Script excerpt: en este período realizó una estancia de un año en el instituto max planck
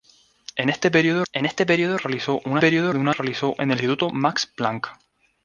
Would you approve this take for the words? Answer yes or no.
no